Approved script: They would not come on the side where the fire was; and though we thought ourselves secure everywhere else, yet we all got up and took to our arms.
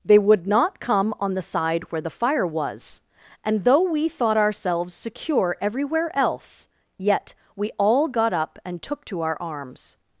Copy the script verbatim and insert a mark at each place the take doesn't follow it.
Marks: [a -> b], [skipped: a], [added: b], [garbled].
They would not come on the side where the fire was; and though we thought ourselves secure everywhere else, yet we all got up and took to our arms.